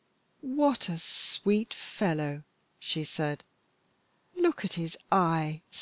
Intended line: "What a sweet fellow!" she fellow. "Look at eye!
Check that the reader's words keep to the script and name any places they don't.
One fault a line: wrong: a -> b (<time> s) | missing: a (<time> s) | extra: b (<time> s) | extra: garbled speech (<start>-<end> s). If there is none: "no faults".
wrong: fellow -> said (3.0 s)
extra: his (4.8 s)